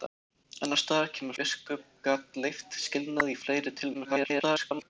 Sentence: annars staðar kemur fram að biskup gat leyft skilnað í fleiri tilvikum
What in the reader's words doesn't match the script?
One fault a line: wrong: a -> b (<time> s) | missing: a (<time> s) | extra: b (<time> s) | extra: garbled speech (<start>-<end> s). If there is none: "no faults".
missing: fram að (1.4 s)
extra: garbled speech (3.9-4.9 s)